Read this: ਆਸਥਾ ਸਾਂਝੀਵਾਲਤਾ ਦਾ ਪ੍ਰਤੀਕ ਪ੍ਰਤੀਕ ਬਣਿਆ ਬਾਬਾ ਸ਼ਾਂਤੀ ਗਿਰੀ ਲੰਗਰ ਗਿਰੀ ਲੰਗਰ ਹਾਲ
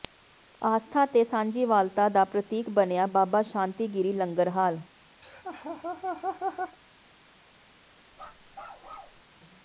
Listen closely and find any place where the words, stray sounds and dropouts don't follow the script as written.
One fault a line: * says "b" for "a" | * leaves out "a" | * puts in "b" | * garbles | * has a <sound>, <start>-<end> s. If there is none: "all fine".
* puts in "ਤੇ"
* leaves out "ਪ੍ਰਤੀਕ"
* leaves out "ਗਿਰੀ ਲੰਗਰ"
* has a laugh, 5.2-6.8 s
* has a bark, 8.1-9.2 s